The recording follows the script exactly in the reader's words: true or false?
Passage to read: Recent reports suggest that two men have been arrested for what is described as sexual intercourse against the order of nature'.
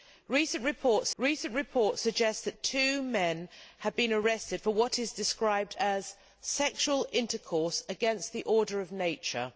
false